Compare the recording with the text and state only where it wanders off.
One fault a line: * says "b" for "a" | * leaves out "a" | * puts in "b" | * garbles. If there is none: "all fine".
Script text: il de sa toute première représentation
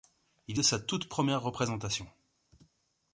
all fine